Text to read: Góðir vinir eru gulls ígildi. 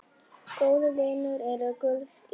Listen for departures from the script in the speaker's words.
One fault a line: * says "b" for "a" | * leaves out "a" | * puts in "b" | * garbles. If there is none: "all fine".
all fine